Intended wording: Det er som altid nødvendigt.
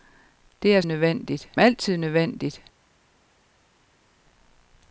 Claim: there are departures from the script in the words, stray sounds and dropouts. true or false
true